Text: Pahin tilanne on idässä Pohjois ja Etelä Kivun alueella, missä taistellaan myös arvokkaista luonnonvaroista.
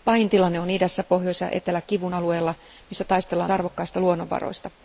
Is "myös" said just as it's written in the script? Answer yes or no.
no